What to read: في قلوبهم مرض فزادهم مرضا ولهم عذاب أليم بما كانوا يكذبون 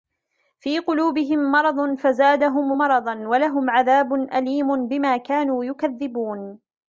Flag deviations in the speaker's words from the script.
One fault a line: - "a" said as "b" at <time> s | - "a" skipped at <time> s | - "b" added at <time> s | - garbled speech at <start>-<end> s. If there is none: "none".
none